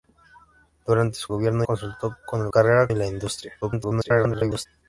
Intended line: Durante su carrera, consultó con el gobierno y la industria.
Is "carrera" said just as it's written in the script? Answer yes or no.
no